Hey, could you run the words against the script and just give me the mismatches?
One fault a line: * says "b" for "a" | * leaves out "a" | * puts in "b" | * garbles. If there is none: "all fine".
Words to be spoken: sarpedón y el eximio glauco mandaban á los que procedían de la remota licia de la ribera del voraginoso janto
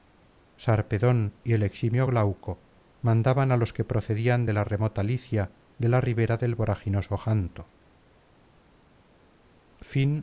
all fine